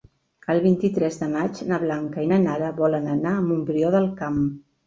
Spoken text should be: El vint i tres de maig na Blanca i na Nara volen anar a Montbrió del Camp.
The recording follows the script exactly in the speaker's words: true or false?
true